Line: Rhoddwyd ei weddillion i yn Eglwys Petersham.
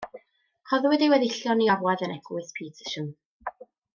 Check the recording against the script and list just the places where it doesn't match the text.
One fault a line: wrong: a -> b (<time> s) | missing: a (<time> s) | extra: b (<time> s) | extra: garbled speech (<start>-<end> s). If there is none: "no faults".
extra: orwedd (1.7 s)